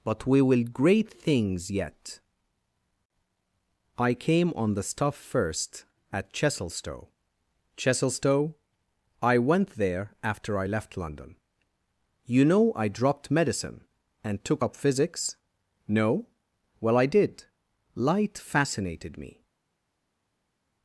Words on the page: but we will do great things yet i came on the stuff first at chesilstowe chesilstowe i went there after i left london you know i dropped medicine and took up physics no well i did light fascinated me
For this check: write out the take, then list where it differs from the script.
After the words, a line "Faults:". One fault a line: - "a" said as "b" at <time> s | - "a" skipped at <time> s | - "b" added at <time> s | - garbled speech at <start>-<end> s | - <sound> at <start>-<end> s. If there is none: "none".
but we will great things yet i came on the stuff first at chesilstowe chesilstowe i went there after i left london you know i dropped medicine and took up physics no well i did light fascinated me
Faults:
- "do" skipped at 0.6 s